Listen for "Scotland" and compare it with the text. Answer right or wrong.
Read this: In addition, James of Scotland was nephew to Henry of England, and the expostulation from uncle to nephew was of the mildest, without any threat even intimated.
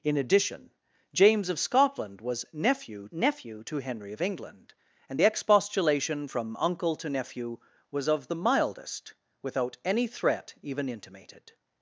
right